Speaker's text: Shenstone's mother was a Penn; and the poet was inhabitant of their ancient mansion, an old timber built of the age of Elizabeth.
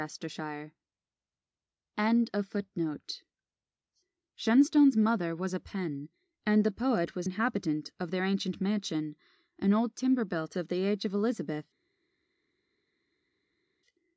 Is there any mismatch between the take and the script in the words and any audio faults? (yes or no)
no